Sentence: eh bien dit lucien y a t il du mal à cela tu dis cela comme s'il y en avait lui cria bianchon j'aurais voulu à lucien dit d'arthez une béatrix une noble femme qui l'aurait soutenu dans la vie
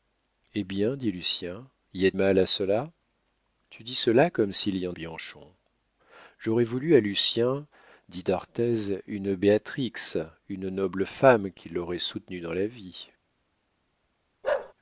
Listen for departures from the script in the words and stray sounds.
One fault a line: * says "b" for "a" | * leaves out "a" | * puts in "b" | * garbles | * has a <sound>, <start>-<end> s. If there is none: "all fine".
* leaves out "t il du"
* leaves out "avait lui cria"
* has a bark, 14.4-14.7 s